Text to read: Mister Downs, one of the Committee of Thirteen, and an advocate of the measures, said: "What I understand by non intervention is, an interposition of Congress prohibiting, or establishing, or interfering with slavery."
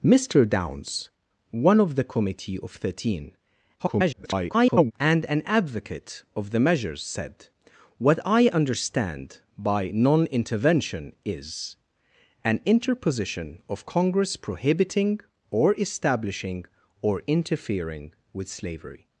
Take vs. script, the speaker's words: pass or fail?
fail